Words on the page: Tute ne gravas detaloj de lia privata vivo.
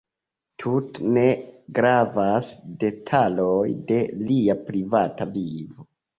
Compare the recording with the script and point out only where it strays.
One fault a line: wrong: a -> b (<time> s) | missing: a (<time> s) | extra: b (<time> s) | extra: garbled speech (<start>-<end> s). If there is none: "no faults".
no faults